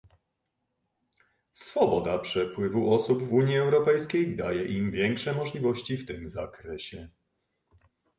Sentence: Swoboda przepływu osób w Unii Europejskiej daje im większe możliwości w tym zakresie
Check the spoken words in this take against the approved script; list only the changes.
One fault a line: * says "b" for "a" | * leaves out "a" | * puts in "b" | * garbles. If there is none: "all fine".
all fine